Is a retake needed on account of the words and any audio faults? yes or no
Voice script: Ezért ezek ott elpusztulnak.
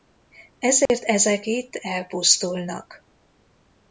yes